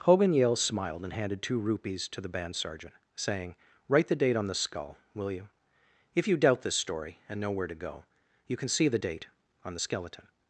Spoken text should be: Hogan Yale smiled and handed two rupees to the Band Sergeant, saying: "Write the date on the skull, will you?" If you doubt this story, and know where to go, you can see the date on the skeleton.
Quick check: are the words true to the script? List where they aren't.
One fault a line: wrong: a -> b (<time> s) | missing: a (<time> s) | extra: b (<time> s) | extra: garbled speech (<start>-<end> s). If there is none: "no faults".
no faults